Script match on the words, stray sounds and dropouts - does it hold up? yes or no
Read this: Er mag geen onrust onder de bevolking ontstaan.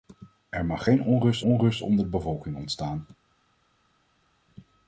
no